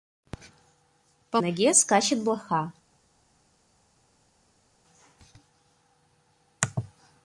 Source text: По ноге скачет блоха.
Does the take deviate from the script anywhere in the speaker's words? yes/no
no